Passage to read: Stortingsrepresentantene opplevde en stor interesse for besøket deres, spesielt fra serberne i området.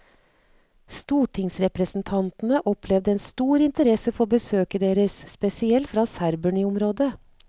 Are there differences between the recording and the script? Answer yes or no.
no